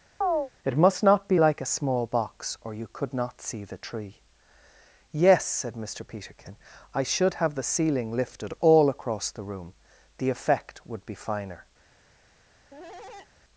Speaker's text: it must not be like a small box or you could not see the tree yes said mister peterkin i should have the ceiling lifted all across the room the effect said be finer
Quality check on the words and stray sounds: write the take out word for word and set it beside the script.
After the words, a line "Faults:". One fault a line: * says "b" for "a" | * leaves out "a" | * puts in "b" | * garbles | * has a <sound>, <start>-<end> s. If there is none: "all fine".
it must not be like a small box or you could not see the tree yes said mister peterkin i should have the ceiling lifted all across the room the effect would be finer
Faults:
* has a chirp, 0.2-0.5 s
* says "would" for "said"
* has a cough, 12.7-13.3 s